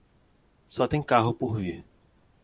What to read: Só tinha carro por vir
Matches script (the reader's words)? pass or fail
fail